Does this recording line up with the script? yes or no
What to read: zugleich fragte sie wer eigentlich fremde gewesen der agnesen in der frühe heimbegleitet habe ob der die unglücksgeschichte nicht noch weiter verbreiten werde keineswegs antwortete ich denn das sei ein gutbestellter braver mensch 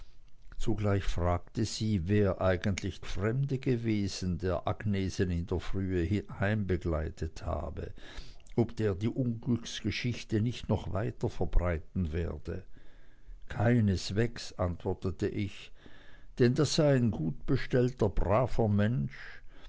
yes